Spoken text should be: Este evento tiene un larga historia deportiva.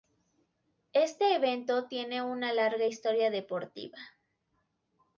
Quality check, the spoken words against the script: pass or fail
fail